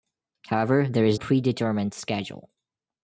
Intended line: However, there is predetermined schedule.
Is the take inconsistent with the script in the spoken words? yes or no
no